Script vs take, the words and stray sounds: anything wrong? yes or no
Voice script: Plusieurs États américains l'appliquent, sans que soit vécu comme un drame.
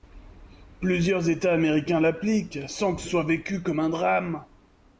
no